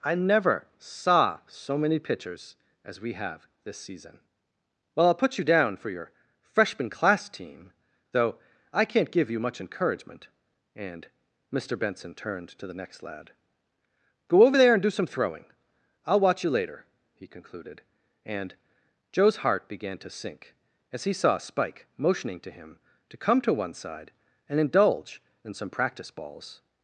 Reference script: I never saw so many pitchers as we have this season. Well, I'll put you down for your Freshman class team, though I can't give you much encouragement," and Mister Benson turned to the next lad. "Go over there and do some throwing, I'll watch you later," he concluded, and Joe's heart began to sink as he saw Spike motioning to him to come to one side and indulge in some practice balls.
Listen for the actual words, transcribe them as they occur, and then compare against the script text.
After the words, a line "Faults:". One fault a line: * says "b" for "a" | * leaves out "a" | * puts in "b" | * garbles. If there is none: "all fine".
I never saw so many pitchers as we have this season. Well, I'll put you down for your Freshman class team, though I can't give you much encouragement," and Mister Benson turned to the next lad. "Go over there and do some throwing, I'll watch you later," he concluded, and Joe's heart began to sink as he saw Spike motioning to him to come to one side and indulge in some practice balls.
Faults:
all fine